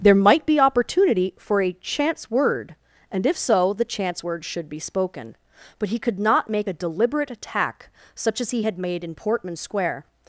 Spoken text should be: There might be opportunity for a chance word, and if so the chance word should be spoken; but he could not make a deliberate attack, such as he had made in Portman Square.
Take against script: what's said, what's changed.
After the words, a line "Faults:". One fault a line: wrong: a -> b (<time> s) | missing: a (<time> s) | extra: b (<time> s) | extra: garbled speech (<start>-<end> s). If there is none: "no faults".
There might be opportunity for a chance word, and if so the chance word should be spoken; but he could not make a deliberate attack, such as he had made in Portman Square.
Faults:
no faults